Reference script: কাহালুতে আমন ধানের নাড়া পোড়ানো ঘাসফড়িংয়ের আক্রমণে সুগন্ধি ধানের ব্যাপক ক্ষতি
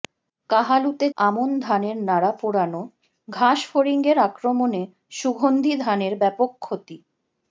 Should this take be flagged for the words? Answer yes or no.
no